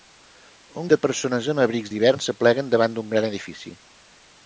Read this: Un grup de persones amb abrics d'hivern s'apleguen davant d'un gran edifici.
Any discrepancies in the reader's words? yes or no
yes